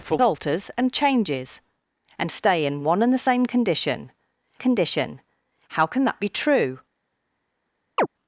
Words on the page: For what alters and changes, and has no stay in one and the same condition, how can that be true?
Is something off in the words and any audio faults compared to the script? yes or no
yes